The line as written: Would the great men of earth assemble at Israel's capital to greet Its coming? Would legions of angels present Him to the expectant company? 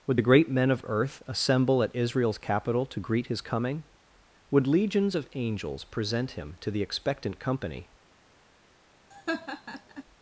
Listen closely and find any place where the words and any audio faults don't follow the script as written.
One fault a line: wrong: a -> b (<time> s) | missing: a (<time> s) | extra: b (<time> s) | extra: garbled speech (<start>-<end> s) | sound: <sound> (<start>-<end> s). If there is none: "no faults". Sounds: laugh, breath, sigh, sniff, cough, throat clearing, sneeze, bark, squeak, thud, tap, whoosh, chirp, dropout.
wrong: Its -> His (3.3 s)
sound: laugh (9.1-10.0 s)